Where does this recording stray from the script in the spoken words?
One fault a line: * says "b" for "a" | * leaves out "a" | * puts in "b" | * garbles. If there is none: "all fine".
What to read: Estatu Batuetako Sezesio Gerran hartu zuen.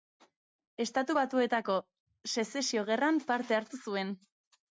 * puts in "parte"